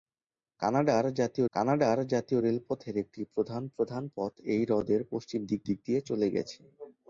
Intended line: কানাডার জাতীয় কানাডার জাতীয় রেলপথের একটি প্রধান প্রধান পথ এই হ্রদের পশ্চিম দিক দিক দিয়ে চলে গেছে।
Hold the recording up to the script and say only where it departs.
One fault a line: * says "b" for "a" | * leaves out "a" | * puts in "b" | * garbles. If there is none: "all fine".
all fine